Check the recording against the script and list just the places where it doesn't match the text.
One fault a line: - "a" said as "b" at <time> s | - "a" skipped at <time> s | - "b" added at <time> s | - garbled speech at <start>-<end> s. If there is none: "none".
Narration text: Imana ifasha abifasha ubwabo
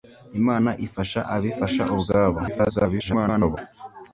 - garbled speech at 2.5-3.6 s